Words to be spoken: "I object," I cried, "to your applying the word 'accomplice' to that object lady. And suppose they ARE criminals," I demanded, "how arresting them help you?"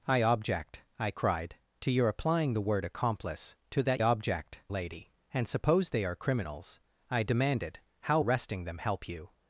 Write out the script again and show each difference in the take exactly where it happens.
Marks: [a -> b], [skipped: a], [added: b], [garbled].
"I object," I cried, "to your applying the word 'accomplice' to that object lady. And suppose they ARE criminals," I demanded, "how arresting them help you?"